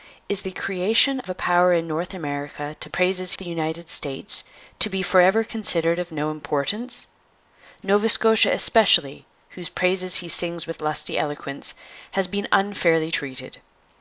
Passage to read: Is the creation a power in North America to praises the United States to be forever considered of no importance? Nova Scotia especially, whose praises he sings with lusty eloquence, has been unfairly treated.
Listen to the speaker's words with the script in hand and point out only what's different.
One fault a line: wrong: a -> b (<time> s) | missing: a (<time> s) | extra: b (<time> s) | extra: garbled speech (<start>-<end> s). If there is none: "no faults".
no faults